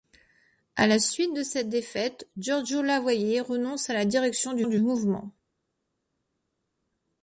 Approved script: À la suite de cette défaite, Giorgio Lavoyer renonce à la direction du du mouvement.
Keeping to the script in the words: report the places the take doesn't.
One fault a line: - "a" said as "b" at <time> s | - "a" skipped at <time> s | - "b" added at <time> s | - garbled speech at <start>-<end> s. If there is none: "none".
none